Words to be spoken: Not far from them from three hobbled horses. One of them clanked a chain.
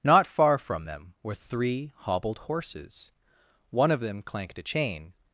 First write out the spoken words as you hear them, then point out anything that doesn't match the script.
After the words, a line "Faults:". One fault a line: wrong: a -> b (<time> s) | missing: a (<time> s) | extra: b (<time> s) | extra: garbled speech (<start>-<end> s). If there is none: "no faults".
Not far from them were three hobbled horses. One of them clanked a chain.
Faults:
wrong: from -> were (1.2 s)